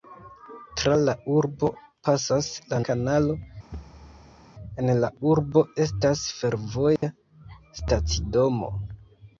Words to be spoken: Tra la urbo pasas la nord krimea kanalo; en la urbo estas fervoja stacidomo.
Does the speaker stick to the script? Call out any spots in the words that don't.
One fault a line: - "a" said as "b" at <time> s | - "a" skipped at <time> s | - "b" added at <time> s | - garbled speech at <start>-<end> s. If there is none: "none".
- "nord krimea" skipped at 2.8 s